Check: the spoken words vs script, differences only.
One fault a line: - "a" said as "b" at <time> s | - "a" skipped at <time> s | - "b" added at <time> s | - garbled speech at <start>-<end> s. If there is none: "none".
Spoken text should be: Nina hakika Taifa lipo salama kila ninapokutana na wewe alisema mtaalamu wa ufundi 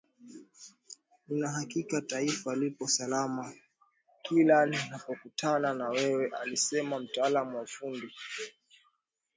none